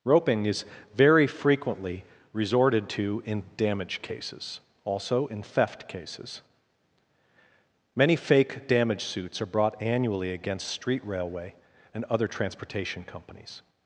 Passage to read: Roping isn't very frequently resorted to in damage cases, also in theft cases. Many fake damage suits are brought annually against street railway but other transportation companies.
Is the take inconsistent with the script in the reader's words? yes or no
yes